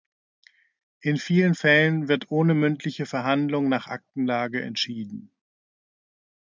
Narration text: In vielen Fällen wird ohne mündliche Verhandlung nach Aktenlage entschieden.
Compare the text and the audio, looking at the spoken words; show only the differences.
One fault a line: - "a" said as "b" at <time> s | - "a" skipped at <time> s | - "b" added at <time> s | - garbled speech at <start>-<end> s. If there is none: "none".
none